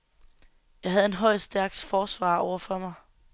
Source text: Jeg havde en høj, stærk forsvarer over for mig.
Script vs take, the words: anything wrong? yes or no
no